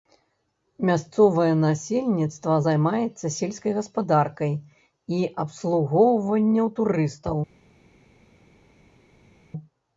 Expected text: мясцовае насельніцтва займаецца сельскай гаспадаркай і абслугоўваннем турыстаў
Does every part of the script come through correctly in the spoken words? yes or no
yes